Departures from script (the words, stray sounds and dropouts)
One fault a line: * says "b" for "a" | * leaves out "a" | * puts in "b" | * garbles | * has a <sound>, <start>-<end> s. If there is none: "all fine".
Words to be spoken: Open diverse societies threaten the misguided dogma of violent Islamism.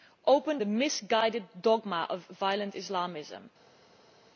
* leaves out "diverse societies threaten"